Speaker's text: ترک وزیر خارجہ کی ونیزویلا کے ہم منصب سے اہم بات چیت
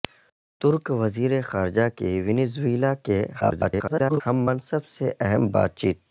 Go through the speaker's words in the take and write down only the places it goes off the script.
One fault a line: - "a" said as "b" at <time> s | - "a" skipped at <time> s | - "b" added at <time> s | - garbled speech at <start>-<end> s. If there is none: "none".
- garbled speech at 3.4-4.2 s